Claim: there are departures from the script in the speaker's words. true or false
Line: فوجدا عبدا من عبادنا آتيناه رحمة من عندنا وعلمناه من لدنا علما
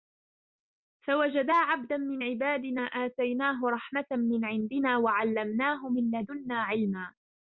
false